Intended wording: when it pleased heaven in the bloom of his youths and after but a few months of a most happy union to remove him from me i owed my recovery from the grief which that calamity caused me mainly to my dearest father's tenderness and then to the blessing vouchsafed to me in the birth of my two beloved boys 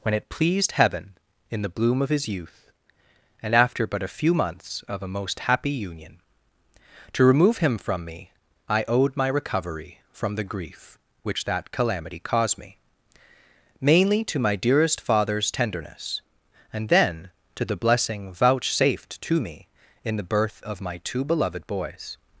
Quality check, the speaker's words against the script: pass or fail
fail